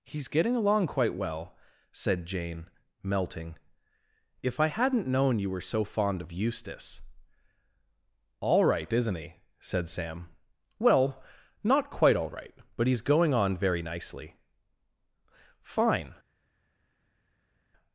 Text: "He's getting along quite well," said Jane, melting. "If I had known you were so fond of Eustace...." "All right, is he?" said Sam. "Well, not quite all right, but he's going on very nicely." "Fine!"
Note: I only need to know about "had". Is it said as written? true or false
false